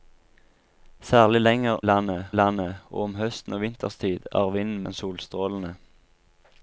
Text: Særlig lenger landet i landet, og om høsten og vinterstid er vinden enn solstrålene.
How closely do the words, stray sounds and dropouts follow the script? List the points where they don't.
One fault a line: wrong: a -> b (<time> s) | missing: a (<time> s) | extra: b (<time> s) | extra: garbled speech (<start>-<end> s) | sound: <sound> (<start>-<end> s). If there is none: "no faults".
no faults